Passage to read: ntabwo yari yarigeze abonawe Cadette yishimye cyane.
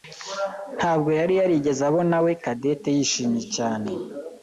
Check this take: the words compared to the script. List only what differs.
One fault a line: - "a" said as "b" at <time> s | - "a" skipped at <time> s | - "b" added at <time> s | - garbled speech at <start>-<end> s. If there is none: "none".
none